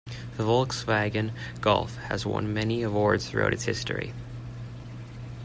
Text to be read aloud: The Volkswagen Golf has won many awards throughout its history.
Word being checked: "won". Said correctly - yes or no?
yes